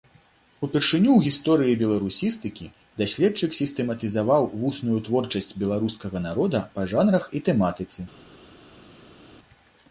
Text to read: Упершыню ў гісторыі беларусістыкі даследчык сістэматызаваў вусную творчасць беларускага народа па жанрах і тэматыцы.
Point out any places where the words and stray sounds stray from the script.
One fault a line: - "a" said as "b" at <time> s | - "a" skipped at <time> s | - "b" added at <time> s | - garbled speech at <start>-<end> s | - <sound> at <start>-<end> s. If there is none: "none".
none